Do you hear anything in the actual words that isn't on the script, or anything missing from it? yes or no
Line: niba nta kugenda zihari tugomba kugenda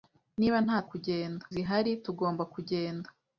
no